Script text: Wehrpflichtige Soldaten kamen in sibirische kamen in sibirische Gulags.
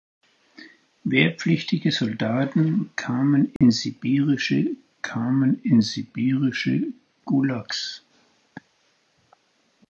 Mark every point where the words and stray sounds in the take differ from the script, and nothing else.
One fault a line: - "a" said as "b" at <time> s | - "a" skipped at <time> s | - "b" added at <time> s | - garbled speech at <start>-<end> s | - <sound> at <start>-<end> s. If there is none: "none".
- dropout at 3.6-3.6 s